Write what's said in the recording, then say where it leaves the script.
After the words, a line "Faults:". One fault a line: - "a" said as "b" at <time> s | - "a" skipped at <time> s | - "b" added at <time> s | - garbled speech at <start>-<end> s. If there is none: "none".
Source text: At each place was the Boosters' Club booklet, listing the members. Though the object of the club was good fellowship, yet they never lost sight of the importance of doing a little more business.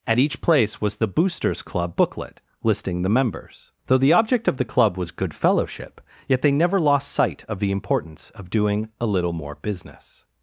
At each place was the Boosters' Club booklet, listing the members. Though the object of the club was good fellowship, yet they never lost sight of the importance of doing a little more business.
Faults:
none